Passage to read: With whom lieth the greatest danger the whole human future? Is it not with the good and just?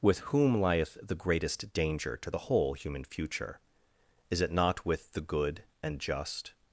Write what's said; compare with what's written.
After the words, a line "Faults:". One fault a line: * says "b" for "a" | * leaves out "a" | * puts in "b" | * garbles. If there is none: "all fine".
With whom lieth the greatest danger to the whole human future? Is it not with the good and just?
Faults:
* puts in "to"